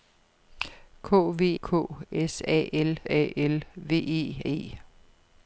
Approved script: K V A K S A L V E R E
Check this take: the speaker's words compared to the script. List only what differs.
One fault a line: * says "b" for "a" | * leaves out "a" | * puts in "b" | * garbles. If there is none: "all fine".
* leaves out "A"
* puts in "A L"
* leaves out "R"